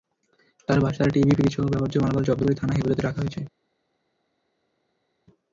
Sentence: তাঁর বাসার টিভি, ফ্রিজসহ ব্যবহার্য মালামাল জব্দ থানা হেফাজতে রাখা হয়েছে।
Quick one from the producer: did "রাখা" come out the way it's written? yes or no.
yes